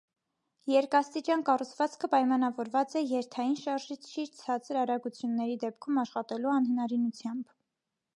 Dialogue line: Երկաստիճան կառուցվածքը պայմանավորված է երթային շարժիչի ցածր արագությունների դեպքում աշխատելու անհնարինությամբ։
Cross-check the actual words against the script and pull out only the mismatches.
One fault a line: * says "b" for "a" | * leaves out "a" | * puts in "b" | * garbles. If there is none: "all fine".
all fine